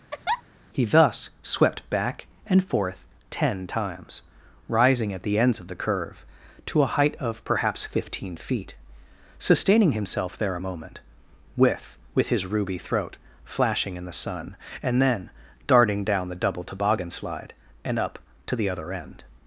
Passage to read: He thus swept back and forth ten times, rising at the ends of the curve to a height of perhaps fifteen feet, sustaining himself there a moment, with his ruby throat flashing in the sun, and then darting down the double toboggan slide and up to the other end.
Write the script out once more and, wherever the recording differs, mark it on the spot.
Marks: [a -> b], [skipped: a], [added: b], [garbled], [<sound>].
[laugh] He thus swept back and forth ten times, rising at the ends of the curve to a height of perhaps fifteen feet, sustaining himself there a moment, with [added: with] his ruby throat flashing in the sun, and then darting down the double toboggan slide and up to the other end.